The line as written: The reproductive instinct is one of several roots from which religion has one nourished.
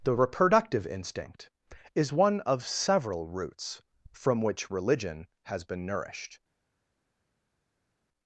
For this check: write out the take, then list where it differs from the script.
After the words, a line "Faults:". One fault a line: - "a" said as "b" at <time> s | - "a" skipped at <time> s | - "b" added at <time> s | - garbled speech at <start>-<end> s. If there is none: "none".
The reproductive instinct is one of several roots from which religion has been nourished.
Faults:
- "one" said as "been" at 5.6 s